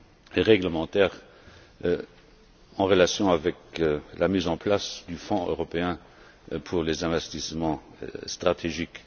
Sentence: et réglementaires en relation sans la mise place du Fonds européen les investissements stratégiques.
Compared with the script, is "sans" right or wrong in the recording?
wrong